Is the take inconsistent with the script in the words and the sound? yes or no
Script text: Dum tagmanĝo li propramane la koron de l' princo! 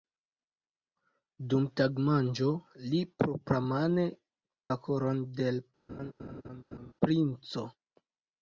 yes